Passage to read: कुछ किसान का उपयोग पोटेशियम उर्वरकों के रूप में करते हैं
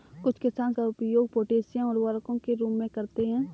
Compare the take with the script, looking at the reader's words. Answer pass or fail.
pass